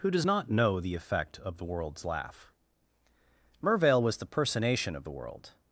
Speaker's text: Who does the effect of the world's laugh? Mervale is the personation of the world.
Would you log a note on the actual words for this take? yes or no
yes